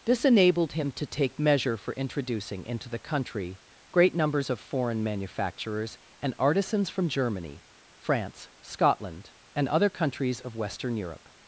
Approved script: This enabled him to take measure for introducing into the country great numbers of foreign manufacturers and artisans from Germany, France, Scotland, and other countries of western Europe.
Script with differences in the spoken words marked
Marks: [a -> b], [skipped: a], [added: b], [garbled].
This enabled him to take measure for introducing into the country great numbers of foreign manufacturers and artisans from Germany, France, Scotland, and other countries of western Europe.